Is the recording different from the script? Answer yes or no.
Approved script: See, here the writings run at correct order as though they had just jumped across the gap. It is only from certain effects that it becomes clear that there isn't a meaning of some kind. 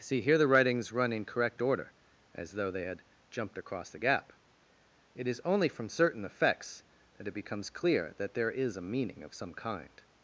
yes